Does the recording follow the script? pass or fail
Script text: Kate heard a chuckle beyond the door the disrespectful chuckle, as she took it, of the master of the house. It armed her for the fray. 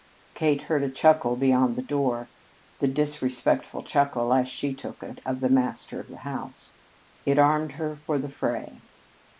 pass